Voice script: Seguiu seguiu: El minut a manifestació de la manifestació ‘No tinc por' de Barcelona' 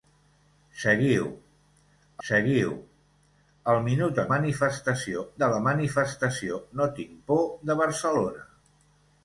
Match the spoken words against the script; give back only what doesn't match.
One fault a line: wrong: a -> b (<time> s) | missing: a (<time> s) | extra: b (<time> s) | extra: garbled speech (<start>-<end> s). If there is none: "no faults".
no faults